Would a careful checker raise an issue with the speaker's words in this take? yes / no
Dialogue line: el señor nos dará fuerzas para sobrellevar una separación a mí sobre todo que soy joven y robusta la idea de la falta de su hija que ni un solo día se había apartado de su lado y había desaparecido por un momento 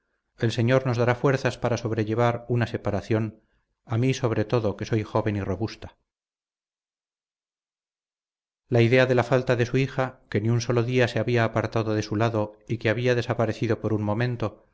yes